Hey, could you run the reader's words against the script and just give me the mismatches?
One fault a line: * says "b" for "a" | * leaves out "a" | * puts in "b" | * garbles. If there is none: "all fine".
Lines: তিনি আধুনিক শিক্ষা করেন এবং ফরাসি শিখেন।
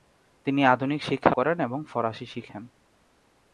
all fine